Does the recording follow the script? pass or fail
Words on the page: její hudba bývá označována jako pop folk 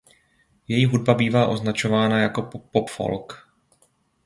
pass